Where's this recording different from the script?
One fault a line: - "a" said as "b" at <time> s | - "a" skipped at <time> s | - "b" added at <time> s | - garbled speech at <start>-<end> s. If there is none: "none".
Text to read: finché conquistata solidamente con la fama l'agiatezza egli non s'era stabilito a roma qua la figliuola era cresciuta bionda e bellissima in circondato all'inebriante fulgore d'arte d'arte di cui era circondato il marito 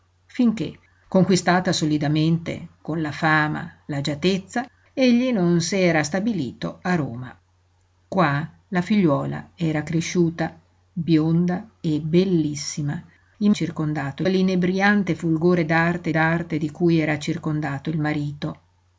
none